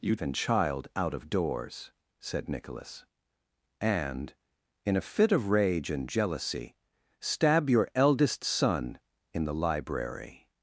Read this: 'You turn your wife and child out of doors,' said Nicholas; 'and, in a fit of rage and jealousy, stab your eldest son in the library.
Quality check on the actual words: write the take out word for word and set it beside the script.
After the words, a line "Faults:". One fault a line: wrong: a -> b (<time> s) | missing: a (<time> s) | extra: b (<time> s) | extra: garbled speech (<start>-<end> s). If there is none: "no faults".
'You and child out of doors,' said Nicholas; 'and, in a fit of rage and jealousy, stab your eldest son in the library.
Faults:
missing: turn your wife (0.1 s)